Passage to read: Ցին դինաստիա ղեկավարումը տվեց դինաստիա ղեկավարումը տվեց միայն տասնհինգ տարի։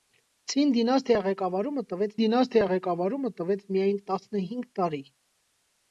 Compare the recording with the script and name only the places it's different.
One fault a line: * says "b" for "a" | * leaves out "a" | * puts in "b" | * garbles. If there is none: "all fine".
all fine